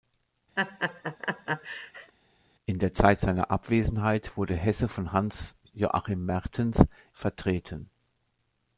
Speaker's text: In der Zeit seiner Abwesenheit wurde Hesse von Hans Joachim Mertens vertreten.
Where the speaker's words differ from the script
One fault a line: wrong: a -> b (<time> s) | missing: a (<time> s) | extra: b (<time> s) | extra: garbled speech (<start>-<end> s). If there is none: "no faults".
no faults